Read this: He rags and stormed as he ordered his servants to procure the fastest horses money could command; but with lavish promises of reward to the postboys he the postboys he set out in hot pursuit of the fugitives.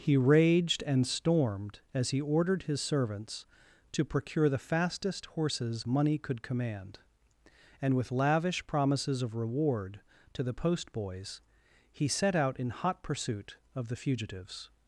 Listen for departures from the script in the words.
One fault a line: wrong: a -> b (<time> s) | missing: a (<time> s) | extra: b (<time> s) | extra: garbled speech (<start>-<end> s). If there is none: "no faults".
wrong: rags -> raged (0.2 s)
wrong: but -> and (7.8 s)
missing: the postboys he (12.1 s)